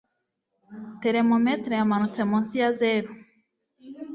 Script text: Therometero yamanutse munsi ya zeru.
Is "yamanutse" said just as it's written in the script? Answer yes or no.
yes